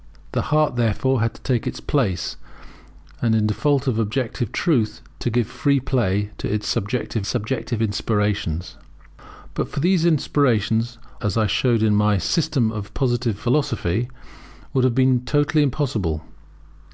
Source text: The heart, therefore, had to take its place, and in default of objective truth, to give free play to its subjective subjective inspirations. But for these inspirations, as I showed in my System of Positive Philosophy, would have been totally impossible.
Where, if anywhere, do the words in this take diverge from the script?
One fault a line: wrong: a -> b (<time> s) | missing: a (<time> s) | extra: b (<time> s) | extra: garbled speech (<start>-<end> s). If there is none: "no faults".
no faults